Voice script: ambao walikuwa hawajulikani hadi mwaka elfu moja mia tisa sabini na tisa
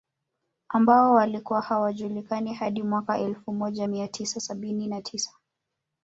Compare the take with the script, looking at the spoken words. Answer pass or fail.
pass